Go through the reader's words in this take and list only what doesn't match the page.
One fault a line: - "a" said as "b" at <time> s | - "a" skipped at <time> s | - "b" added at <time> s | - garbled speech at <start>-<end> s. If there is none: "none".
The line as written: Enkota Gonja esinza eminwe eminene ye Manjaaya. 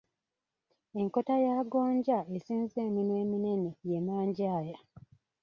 - "ya" added at 1.4 s